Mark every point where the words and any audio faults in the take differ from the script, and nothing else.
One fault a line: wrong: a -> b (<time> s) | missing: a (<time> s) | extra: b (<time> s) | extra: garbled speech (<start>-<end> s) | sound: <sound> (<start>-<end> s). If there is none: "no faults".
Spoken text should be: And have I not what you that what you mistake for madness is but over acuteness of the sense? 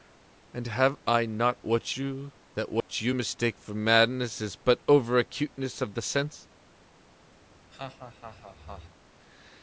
sound: dropout (2.8-2.9 s)
sound: laugh (7.4-9.0 s)